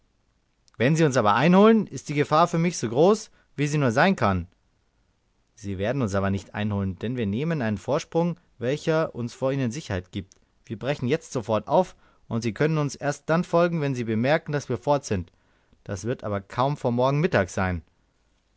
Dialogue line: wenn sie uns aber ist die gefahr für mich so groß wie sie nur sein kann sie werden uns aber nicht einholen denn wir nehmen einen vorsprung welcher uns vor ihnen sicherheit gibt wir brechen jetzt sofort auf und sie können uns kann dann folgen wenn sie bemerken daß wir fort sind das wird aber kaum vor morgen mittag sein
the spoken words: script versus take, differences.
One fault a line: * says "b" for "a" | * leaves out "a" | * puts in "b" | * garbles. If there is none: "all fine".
* puts in "einholen"
* says "erst" for "kann"